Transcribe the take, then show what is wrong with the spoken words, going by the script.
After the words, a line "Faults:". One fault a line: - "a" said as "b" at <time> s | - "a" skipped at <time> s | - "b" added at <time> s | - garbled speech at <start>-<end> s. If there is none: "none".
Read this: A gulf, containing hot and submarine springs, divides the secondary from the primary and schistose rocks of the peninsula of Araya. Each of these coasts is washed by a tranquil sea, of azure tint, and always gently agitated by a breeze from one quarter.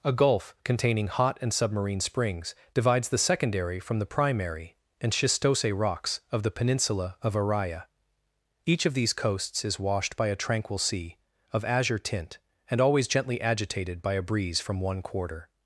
A gulf, containing hot and submarine springs, divides the secondary from the primary and schistose rocks of the peninsula of Araya. Each of these coasts is washed by a tranquil sea, of azure tint, and always gently agitated by a breeze from one quarter.
Faults:
none